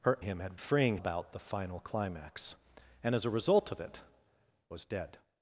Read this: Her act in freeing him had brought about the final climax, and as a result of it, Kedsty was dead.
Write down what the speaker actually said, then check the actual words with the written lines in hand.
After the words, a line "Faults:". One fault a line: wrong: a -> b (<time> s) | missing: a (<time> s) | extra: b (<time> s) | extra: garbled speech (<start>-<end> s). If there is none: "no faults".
Her him had freeing about the final climax, and as a result of it, Was dead.
Faults:
missing: act in freeing (0.2 s)
wrong: brought -> freeing (0.6 s)
missing: Kedsty (4.0 s)